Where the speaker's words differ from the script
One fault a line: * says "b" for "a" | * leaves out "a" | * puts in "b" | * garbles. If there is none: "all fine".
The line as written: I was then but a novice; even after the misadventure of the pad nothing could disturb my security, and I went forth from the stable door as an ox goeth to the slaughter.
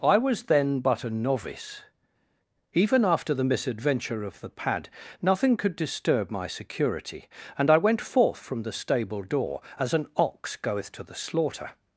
all fine